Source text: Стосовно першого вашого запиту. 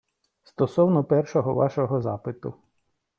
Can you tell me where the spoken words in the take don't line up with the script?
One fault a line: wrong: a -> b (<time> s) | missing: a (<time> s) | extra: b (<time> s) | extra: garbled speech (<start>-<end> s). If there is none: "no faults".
no faults